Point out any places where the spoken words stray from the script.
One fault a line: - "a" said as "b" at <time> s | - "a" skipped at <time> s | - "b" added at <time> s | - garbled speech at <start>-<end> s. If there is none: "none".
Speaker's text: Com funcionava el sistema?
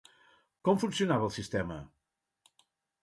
none